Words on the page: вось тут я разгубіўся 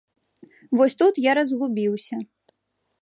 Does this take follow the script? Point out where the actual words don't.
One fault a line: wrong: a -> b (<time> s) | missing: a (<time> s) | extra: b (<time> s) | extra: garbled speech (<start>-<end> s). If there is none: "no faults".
no faults